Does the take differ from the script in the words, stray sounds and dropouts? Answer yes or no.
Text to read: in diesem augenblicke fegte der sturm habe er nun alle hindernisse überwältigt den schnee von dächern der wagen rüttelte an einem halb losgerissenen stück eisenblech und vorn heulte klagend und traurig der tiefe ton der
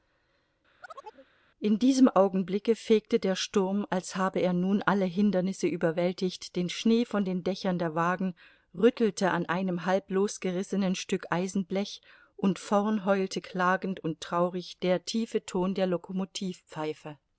yes